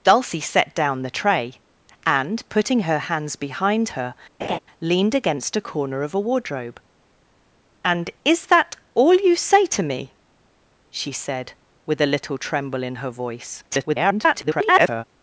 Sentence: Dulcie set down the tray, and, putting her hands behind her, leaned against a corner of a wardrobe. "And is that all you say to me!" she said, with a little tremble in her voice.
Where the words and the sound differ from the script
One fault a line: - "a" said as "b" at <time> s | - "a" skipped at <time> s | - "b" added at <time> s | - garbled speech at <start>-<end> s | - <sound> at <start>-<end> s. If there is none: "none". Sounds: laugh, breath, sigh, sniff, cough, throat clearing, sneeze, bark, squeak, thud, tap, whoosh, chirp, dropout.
- laugh at 4.4-4.6 s
- garbled speech at 13.7-15.0 s